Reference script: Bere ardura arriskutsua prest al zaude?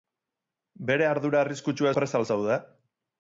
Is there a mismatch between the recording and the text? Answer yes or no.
no